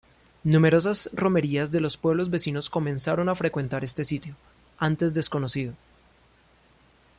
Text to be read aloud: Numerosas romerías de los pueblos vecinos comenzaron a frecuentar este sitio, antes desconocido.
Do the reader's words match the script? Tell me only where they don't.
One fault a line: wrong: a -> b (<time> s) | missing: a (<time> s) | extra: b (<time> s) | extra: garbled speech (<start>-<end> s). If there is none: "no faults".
no faults